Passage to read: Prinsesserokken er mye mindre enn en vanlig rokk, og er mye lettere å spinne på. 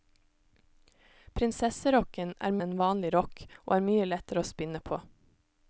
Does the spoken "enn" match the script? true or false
false